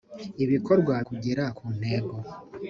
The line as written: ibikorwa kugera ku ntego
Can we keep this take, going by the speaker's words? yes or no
yes